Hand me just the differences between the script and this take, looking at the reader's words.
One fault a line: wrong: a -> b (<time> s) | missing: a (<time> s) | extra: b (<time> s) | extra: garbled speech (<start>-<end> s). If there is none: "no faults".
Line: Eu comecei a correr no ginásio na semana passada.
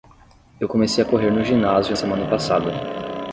missing: na (1.9 s)